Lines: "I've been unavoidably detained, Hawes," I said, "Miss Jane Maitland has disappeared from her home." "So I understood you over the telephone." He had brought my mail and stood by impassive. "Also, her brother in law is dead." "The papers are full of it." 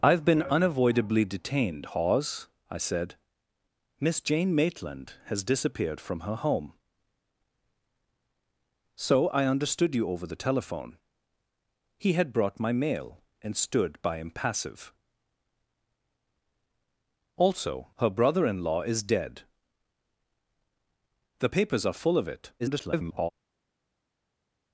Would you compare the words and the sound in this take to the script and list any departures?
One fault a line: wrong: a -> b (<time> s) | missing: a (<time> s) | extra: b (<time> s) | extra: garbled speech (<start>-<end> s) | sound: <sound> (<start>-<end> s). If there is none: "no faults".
extra: garbled speech (22.6-23.3 s)